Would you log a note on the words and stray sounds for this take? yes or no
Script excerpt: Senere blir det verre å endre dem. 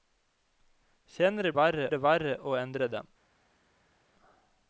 yes